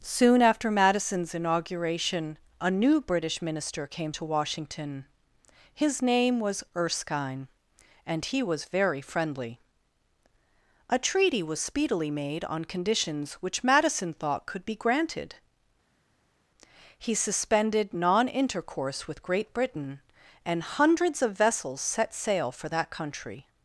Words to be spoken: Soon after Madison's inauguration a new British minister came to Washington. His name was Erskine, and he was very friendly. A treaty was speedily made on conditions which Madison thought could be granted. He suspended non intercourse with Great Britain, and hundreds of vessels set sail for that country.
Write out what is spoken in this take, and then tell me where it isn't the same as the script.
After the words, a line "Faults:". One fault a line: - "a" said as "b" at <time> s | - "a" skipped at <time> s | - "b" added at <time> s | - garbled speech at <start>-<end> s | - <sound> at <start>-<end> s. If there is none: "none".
Soon after Madison's inauguration a new British minister came to Washington. His name was Erskine, and he was very friendly. A treaty was speedily made on conditions which Madison thought could be granted. He suspended non intercourse with Great Britain, and hundreds of vessels set sail for that country.
Faults:
none